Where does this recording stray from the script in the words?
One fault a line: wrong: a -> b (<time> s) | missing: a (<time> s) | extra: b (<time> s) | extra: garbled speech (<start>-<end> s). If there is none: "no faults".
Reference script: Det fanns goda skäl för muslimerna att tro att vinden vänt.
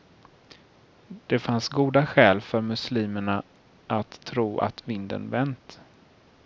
no faults